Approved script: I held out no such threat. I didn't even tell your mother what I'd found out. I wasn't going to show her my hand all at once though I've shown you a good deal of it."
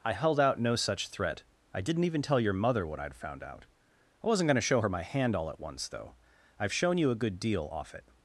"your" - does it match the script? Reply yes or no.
yes